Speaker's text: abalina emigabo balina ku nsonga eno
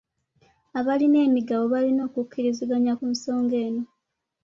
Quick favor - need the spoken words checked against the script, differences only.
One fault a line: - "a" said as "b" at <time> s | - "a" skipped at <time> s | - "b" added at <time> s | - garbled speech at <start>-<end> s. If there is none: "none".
- "okukkiriziganya" added at 2.1 s